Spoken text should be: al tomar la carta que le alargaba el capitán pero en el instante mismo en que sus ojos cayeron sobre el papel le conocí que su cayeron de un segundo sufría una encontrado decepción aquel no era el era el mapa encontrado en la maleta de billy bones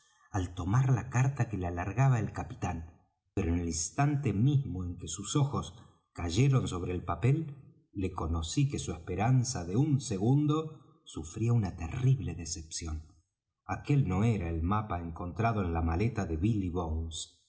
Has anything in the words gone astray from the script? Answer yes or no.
yes